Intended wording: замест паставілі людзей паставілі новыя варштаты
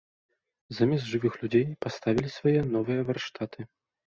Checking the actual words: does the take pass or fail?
fail